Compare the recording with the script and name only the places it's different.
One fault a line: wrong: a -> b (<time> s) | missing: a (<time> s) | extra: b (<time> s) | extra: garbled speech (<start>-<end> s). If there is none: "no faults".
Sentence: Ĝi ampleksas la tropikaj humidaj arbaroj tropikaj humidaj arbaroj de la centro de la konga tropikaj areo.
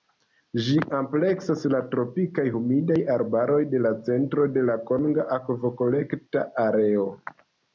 missing: tropikaj humidaj arbaroj (3.6 s)
wrong: tropikaj -> akvokolekta (5.4 s)